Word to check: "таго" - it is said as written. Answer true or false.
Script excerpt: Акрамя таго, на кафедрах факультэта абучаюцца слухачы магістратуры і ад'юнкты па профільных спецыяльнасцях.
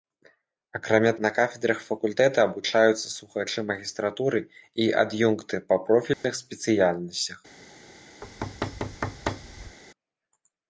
false